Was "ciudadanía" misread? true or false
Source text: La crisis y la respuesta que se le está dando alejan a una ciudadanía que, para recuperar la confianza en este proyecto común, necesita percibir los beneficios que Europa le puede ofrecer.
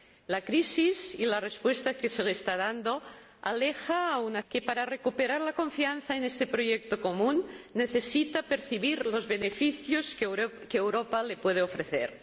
true